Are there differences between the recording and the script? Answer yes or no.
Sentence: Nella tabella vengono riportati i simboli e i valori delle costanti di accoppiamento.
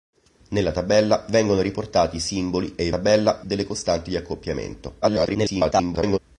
yes